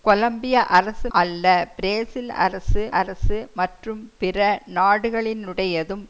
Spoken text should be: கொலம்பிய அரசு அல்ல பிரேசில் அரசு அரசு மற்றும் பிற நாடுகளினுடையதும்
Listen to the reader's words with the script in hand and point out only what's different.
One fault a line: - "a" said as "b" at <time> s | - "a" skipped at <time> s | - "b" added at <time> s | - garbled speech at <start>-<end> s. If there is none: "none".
none